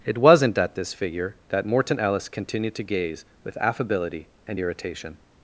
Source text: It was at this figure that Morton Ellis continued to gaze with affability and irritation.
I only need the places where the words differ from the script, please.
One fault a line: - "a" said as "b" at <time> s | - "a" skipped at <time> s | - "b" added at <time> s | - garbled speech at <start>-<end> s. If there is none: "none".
- "was" said as "wasn't" at 0.2 s